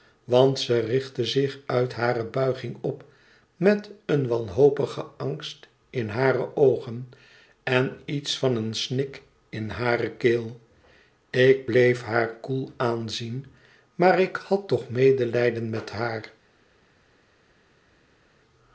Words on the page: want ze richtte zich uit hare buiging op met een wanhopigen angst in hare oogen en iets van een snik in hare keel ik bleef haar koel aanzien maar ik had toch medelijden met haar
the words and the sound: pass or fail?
pass